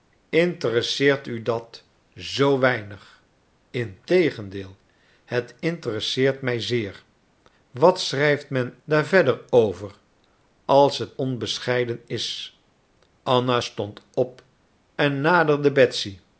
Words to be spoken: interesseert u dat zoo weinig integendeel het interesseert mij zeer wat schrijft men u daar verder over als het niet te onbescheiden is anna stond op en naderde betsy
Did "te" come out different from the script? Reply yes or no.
yes